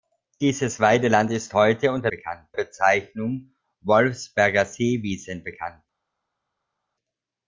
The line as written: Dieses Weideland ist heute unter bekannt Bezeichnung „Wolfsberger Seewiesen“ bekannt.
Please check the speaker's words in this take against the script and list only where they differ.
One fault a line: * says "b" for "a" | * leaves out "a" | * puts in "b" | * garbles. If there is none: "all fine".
all fine